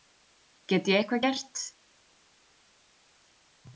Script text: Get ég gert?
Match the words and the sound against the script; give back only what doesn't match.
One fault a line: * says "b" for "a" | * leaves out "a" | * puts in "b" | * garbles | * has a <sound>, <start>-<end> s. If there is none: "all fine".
* puts in "eitthvað"